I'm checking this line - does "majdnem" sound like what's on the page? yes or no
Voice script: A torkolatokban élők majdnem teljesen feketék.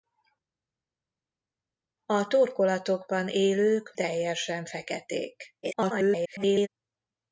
no